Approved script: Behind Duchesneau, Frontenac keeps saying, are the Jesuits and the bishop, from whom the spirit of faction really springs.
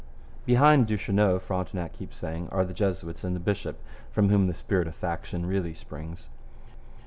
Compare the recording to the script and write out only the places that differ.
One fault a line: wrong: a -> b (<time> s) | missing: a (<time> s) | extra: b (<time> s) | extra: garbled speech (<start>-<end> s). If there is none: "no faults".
no faults